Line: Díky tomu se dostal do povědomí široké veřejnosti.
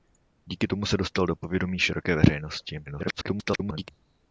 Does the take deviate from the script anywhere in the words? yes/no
yes